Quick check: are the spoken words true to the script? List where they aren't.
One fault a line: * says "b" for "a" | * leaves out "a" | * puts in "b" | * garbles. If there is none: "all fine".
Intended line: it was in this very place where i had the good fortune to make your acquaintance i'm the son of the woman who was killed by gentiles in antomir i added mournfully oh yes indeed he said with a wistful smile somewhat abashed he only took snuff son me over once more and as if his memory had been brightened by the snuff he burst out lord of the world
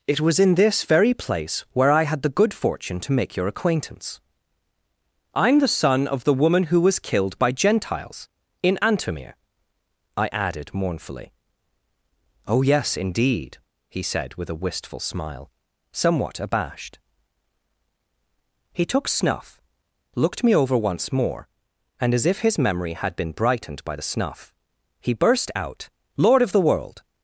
* leaves out "only"
* says "looked" for "son"